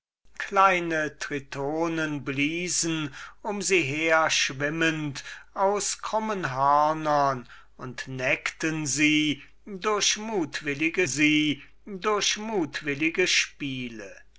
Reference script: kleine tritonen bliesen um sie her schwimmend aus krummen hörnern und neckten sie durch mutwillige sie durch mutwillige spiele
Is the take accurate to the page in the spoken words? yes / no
yes